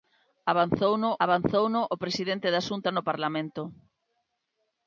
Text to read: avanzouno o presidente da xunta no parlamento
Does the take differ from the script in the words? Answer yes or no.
yes